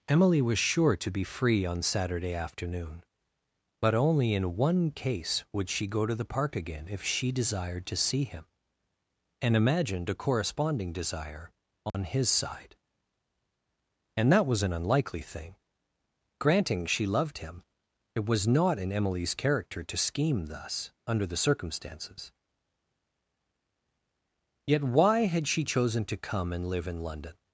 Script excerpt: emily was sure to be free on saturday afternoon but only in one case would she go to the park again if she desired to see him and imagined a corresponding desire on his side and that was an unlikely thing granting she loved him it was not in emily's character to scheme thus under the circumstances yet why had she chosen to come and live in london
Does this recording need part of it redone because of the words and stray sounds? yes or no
yes